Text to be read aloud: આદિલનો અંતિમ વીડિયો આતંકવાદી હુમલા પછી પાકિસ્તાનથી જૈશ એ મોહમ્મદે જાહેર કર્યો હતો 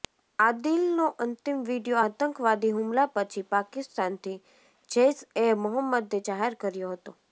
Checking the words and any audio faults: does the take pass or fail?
pass